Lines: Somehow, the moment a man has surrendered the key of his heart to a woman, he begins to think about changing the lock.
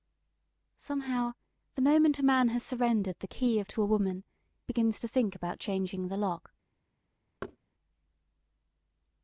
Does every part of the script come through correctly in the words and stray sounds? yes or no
no